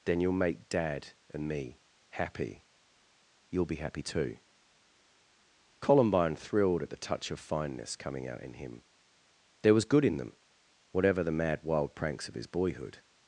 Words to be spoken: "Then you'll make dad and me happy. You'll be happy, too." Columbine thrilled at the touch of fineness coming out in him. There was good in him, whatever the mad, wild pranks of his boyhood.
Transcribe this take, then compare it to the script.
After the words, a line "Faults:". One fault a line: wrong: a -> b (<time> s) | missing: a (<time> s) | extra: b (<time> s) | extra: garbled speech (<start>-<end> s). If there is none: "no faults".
"Then you'll make dad and me happy. You'll be happy, too." Columbine thrilled at the touch of fineness coming out in him. There was good in them, whatever the mad, wild pranks of his boyhood.
Faults:
wrong: him -> them (10.2 s)